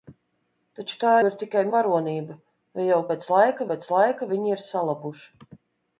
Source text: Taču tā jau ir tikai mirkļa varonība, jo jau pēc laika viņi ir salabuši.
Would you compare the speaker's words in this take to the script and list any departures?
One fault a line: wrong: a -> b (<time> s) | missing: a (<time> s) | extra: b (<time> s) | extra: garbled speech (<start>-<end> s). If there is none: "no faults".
missing: jau (1.1 s)
missing: mirkļa (1.6 s)
extra: pēc laika (3.7 s)